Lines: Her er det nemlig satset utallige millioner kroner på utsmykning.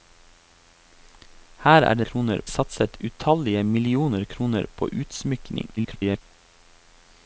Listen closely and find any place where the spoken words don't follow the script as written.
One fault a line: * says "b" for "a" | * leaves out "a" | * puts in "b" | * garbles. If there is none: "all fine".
* says "kroner" for "nemlig"
* garbles